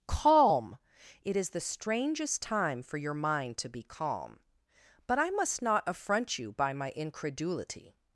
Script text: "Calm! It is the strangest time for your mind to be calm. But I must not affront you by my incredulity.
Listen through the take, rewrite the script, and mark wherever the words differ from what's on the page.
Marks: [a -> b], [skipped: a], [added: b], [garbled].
"Calm! It is the strangest time for your mind to be calm. But I must not affront you by my incredulity.